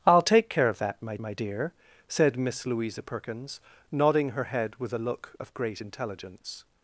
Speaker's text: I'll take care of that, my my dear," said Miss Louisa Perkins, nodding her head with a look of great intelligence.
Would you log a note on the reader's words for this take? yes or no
no